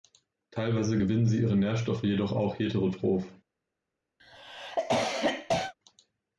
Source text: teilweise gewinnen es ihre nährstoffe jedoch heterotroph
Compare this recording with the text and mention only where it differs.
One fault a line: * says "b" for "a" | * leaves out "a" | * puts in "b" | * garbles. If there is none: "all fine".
* says "sie" for "es"
* puts in "auch"